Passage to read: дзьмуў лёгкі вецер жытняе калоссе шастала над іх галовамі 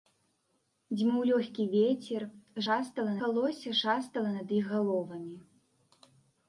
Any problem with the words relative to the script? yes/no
yes